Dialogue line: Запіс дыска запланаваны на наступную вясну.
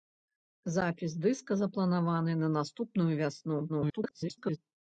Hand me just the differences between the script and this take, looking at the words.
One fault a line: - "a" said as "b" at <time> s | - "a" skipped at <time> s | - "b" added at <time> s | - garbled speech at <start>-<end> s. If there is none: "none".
- garbled speech at 3.7-4.6 s